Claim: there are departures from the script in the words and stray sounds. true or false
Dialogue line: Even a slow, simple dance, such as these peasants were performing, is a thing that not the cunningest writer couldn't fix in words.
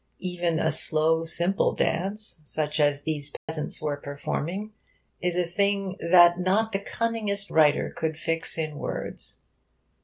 true